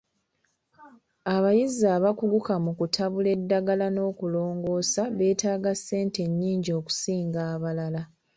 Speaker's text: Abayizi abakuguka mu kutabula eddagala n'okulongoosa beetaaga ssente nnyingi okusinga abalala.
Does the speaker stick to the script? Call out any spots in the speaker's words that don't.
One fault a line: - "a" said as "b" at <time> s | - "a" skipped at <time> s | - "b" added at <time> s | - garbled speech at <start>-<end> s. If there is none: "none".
none